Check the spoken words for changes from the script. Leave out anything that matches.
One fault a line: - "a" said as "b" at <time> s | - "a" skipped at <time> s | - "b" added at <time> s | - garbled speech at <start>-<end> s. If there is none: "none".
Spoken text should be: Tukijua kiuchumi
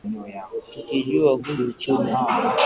none